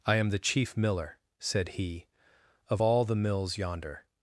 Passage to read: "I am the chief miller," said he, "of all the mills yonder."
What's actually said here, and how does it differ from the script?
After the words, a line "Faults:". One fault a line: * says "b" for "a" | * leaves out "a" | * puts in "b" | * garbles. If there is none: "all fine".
"I am the chief miller," said he, "of all the mills yonder."
Faults:
all fine